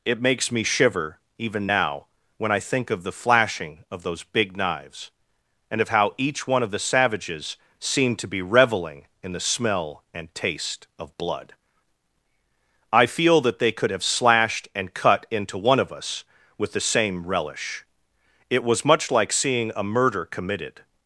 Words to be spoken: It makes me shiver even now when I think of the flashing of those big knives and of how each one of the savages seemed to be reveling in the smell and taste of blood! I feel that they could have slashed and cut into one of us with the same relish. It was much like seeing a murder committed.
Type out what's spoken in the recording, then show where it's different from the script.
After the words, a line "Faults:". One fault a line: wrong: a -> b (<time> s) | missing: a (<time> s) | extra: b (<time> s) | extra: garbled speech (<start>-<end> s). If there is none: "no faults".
It makes me shiver even now when I think of the flashing of those big knives and of how each one of the savages seemed to be reveling in the smell and taste of blood! I feel that they could have slashed and cut into one of us with the same relish. It was much like seeing a murder committed.
Faults:
no faults